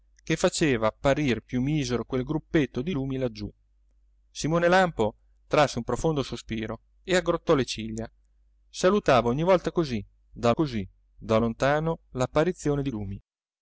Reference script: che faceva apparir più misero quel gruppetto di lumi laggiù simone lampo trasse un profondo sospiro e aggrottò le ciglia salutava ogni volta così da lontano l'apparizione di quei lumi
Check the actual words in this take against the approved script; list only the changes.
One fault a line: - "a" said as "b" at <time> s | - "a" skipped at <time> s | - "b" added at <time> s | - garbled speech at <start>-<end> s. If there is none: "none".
- "così da" added at 10.5 s
- "quei" skipped at 12.9 s